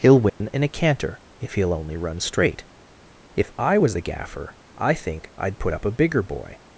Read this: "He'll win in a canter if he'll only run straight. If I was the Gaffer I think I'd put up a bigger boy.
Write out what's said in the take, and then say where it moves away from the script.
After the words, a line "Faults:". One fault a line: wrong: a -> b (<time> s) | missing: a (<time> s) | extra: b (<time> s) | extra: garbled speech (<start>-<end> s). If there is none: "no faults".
"He'll win in a canter if he'll only run straight. If I was the Gaffer I think I'd put up a bigger boy.
Faults:
no faults